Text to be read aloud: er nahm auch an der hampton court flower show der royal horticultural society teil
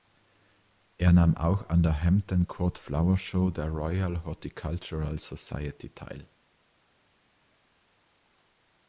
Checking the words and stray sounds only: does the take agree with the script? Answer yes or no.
yes